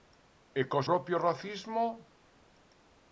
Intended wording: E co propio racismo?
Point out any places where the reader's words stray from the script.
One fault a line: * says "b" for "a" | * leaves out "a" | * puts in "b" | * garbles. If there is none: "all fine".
all fine